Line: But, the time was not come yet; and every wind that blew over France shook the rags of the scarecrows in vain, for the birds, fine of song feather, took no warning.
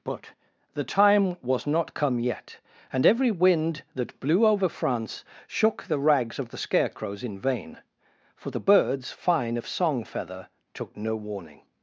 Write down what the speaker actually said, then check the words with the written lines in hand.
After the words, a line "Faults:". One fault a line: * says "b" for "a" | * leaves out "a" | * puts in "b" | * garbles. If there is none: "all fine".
But, the time was not come yet; and every wind that blew over France shook the rags of the scarecrows in vain, for the birds, fine of song feather, took no warning.
Faults:
all fine